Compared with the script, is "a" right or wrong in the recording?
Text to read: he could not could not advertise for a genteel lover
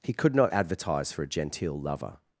right